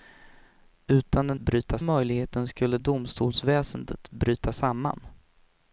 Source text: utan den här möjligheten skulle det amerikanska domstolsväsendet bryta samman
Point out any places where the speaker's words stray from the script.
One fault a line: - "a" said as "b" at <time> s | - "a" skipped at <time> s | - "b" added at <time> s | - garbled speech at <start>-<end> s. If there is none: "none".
- "här" said as "bryta" at 1.4 s
- "det amerikanska" skipped at 2.8 s